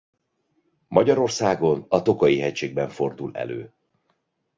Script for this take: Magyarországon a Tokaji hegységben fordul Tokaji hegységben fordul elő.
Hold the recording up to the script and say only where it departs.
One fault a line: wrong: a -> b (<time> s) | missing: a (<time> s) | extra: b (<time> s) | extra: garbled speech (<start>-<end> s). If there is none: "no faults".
missing: Tokaji hegységben fordul (3.4 s)